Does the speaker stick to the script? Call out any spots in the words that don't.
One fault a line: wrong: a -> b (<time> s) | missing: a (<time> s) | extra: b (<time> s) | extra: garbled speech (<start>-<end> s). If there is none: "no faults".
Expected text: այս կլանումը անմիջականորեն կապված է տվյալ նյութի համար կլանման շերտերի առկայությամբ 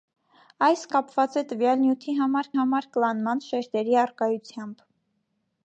missing: կլանումը անմիջականորեն (0.8 s)
extra: համար (2.6 s)